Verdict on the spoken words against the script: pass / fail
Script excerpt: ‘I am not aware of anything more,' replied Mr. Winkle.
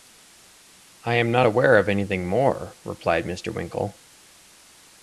pass